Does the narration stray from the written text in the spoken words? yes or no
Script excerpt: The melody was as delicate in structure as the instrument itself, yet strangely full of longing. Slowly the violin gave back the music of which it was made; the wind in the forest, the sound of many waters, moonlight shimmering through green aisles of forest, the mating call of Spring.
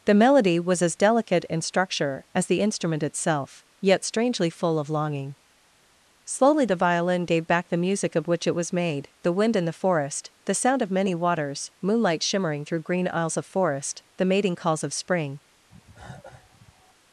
yes